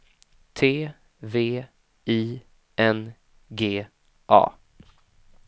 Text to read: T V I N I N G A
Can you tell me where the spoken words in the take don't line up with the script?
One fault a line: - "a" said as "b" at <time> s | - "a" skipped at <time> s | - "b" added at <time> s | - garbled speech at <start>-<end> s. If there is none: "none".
- "I N" skipped at 3.1 s